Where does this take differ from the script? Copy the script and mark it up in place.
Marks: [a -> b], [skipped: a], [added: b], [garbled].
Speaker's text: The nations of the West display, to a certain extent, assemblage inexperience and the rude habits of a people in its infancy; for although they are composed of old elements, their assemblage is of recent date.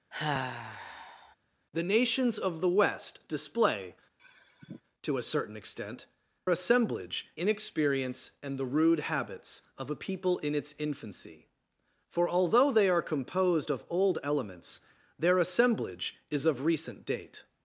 The nations of the West display, to a certain extent, assemblage inexperience and the rude habits of a people in its infancy; for although they are composed of old elements, their assemblage is of recent date.